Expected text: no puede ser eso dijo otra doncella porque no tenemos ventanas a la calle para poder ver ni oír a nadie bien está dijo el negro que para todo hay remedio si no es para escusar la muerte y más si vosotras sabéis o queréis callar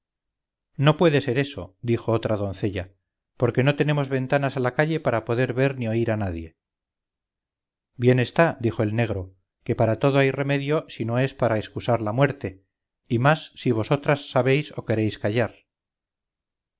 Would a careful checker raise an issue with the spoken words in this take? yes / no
no